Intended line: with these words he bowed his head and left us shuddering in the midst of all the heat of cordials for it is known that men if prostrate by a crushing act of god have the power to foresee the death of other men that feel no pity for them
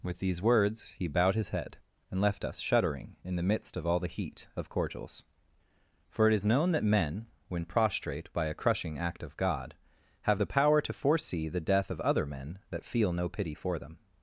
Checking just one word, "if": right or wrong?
wrong